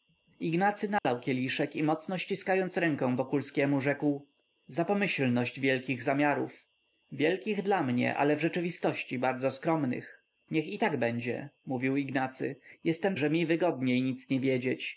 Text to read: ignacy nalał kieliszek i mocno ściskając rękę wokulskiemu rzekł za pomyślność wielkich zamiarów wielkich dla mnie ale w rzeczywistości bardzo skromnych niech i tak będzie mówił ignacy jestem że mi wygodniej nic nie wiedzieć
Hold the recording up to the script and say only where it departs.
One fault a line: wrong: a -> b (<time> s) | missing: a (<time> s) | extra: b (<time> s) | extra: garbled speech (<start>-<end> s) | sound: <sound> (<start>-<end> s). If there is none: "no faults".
sound: dropout (1.0-1.0 s)